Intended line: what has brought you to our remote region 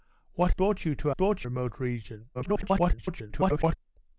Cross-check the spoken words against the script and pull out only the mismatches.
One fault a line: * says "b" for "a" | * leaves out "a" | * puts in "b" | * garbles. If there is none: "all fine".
* leaves out "has"
* says "brought" for "our"
* garbles